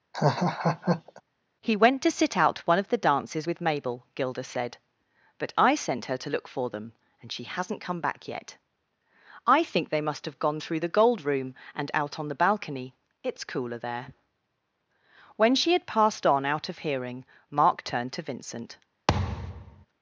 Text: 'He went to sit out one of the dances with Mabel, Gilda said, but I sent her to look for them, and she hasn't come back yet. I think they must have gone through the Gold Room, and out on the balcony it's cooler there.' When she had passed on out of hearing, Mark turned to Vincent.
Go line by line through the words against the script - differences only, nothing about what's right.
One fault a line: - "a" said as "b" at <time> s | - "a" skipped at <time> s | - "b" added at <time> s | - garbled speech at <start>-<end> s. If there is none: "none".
none